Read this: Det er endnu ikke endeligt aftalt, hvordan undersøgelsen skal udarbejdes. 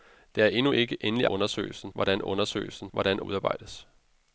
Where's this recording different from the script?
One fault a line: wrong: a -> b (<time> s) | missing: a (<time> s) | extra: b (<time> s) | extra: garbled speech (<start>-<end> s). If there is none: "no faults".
wrong: aftalt -> undersøgelsen (1.2 s)
wrong: skal -> hvordan (2.9 s)